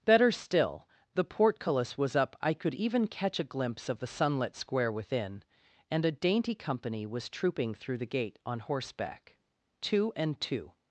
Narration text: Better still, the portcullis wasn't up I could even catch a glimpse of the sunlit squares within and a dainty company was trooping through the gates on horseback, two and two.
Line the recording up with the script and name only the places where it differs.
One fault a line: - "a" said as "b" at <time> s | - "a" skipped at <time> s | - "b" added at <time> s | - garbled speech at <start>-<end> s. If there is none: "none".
- "wasn't" said as "was" at 2.0 s
- "squares" said as "square" at 4.5 s
- "gates" said as "gate" at 8.1 s